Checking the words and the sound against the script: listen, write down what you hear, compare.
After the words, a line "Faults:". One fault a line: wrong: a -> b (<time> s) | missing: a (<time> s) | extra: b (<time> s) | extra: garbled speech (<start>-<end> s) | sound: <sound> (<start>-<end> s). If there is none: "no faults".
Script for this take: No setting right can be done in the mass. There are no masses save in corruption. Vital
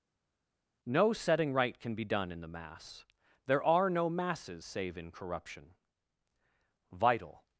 No setting right can be done in the mass. There are no masses save in corruption. Vital
Faults:
no faults